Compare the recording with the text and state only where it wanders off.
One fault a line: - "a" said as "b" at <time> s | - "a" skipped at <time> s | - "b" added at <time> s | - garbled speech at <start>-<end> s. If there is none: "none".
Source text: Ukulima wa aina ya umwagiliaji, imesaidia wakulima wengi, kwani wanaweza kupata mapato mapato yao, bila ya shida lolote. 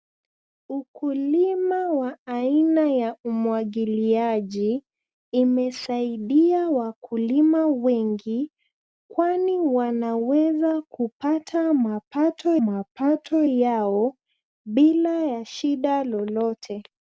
none